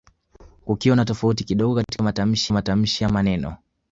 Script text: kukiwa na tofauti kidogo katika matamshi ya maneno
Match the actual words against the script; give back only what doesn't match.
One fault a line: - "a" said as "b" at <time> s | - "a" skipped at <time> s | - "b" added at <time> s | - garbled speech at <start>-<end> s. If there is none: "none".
- "matamshi" added at 2.5 s